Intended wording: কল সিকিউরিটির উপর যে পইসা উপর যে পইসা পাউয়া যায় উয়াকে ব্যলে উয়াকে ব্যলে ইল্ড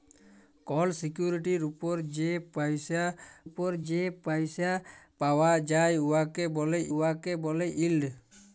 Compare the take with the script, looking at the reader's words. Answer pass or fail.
pass